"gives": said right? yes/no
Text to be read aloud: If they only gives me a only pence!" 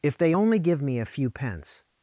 no